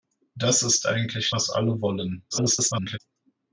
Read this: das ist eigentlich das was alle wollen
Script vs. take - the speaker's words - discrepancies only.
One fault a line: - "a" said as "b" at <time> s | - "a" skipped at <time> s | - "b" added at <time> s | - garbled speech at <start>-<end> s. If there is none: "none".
- "das" skipped at 1.3 s
- garbled speech at 2.3-3.0 s